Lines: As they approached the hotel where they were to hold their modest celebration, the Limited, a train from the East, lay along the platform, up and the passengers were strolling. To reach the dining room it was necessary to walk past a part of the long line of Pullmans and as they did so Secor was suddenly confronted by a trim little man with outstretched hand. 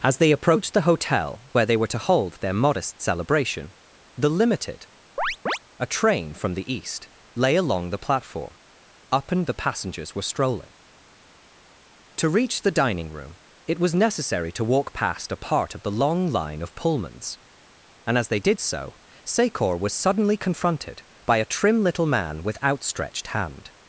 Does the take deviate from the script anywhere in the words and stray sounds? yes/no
yes